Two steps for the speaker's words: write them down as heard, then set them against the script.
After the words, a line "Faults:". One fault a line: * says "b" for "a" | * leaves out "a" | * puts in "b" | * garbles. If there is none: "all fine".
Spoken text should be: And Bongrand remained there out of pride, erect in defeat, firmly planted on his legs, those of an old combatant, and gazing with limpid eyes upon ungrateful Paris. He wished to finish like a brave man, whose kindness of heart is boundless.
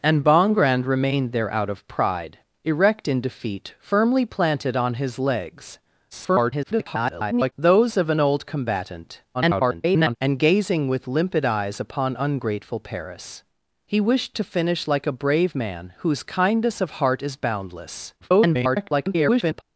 And Bongrand remained there out of pride, erect in defeat, firmly planted on his legs, [garbled] those of an old combatant, [garbled] and gazing with limpid eyes upon ungrateful Paris. He wished to finish like a brave man, whose kindness of heart is boundless. [garbled]
Faults:
* garbles
* garbles
* garbles